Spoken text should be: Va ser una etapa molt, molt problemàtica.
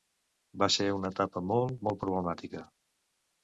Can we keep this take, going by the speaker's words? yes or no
yes